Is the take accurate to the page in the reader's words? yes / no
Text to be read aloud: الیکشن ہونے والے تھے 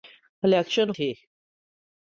no